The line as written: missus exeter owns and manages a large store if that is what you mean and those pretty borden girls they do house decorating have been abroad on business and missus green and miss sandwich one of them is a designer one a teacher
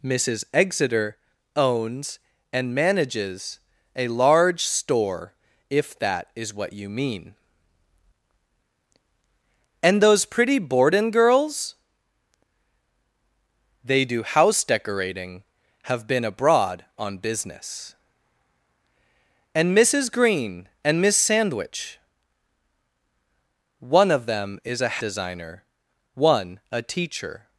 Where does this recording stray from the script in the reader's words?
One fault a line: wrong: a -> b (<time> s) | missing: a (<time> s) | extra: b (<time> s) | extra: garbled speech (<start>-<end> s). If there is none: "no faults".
no faults